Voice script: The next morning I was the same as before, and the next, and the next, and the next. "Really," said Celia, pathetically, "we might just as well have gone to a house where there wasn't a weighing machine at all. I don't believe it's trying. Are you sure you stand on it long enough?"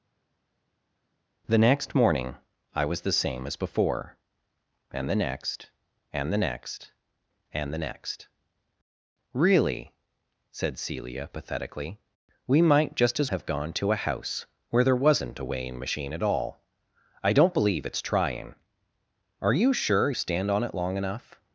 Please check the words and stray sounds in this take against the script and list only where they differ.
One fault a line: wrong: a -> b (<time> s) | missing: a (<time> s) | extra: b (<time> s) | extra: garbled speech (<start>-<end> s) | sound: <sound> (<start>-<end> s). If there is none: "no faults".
missing: well (13.3 s)
missing: you (20.1 s)